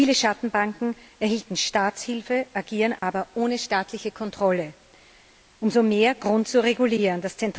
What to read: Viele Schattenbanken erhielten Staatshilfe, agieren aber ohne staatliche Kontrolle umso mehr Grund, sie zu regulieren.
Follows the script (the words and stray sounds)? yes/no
no